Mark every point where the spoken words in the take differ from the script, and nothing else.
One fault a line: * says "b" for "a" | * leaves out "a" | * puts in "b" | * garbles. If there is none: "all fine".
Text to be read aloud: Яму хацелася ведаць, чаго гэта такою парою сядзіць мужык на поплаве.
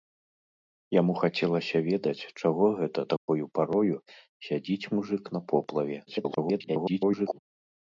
* garbles